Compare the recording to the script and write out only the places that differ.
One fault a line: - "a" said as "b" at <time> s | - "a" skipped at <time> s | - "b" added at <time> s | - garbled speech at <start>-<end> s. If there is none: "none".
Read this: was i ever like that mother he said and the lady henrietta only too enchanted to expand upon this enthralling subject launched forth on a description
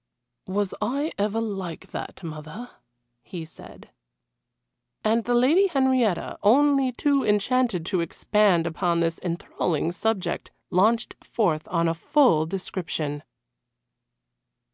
- "full" added at 11.9 s